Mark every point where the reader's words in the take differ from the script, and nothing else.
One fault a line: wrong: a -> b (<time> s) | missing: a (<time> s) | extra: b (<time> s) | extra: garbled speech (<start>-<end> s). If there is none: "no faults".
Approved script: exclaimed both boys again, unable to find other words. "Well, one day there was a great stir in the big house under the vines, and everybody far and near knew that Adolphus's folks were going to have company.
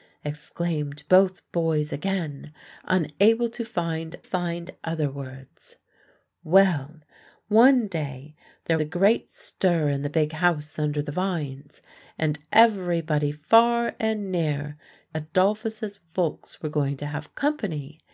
extra: find (4.2 s)
missing: was (8.8 s)
missing: knew that (14.8 s)